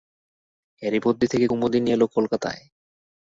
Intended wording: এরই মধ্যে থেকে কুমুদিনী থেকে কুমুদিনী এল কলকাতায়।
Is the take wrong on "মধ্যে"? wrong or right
right